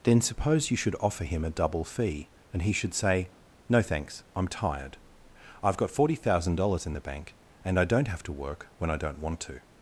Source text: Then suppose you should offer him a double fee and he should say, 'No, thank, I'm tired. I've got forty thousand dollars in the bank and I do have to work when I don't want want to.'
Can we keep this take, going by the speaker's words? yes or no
no